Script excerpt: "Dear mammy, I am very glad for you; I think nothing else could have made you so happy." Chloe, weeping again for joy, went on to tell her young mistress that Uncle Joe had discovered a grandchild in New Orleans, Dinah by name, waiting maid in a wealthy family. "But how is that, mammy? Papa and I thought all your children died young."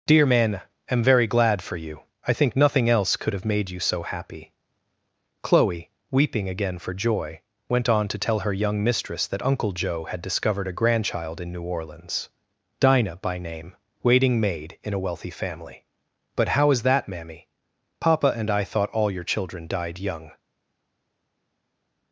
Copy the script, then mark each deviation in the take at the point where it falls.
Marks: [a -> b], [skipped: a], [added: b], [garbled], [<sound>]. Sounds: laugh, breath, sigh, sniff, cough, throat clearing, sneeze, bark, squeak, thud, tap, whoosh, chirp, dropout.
"Dear [mammy, I -> man] am very glad for you; I think nothing else could have made you so happy." Chloe, weeping again for joy, went on to tell her young mistress that Uncle Joe had discovered a grandchild in New Orleans, Dinah by name, waiting maid in a wealthy family. "But how is that, mammy? Papa and I thought all your children died young."